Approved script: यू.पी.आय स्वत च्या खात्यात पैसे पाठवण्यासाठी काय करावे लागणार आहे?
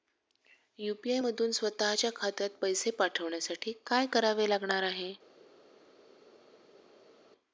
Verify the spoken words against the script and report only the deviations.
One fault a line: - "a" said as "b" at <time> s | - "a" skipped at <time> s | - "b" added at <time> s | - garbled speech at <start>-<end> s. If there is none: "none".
- "मधून" added at 1.1 s